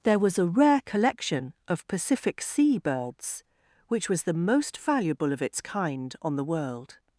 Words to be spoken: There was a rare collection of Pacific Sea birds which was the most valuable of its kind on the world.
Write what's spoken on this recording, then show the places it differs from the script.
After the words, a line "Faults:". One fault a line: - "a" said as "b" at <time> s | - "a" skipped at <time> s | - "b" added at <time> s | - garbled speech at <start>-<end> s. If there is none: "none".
There was a rare collection of Pacific Sea birds which was the most valuable of its kind on the world.
Faults:
none